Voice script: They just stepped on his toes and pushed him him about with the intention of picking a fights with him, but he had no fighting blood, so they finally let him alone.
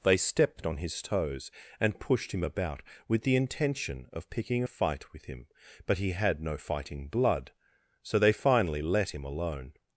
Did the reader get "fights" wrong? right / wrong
wrong